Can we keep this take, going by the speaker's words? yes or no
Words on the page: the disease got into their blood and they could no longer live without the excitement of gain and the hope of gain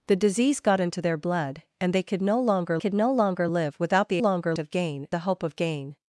no